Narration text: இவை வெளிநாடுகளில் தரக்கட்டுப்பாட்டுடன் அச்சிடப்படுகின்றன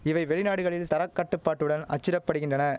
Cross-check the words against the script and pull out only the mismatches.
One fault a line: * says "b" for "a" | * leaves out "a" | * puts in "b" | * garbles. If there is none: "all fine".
all fine